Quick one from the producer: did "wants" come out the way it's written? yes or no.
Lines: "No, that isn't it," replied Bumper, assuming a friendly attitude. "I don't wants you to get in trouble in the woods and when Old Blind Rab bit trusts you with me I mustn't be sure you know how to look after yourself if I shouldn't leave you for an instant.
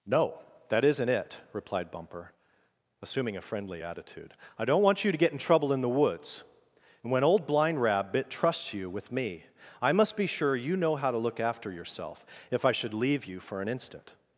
no